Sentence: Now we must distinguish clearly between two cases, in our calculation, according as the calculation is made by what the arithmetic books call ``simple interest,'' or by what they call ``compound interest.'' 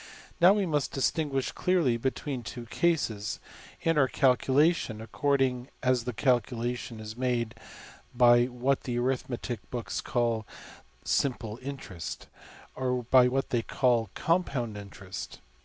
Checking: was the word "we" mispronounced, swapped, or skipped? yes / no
no